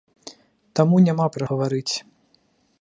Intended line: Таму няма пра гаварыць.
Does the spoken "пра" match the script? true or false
true